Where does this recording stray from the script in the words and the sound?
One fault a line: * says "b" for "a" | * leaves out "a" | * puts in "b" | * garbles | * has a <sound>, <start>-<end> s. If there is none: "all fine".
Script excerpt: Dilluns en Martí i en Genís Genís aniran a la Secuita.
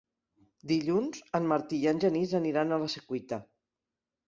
* leaves out "Genís"